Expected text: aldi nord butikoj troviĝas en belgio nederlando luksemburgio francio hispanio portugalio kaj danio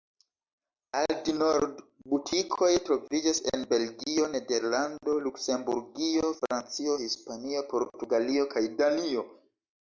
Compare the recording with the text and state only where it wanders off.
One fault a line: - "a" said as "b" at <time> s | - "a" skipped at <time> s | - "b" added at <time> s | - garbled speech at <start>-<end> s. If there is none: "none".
none